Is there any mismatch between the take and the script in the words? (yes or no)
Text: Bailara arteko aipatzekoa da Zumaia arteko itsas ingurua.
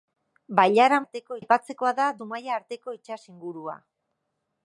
no